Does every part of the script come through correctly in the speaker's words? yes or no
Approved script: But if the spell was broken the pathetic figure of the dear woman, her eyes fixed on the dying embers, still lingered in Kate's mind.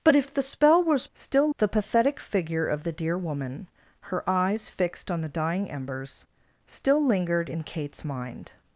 no